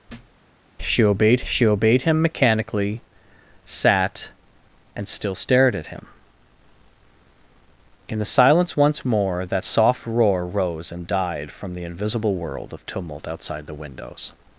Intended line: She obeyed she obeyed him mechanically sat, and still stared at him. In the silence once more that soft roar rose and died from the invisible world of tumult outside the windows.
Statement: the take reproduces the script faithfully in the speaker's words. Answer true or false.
true